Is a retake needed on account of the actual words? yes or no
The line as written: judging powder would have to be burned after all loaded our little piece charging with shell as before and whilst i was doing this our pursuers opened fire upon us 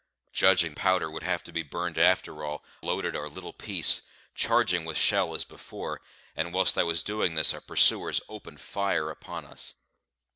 no